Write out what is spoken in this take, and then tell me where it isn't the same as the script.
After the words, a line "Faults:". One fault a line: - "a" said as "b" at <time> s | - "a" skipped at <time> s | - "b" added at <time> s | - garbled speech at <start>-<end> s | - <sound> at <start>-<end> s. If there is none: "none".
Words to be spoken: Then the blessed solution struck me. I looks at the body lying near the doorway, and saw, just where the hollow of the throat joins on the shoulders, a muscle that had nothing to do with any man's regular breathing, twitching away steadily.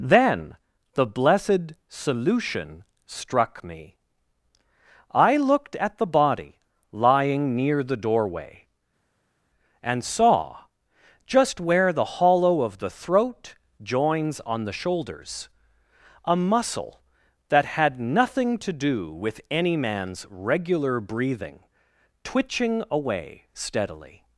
Then the blessed solution struck me. I looked at the body lying near the doorway, and saw, just where the hollow of the throat joins on the shoulders, a muscle that had nothing to do with any man's regular breathing, twitching away steadily.
Faults:
- "looks" said as "looked" at 5.4 s